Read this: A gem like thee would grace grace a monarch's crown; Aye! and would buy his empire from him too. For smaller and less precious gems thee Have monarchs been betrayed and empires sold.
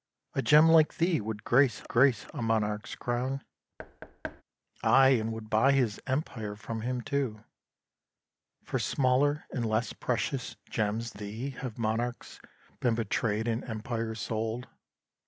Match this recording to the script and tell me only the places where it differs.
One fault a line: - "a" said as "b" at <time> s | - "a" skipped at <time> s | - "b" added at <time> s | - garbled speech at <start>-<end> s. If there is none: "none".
none